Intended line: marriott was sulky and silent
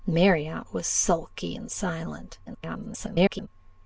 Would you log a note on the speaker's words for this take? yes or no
yes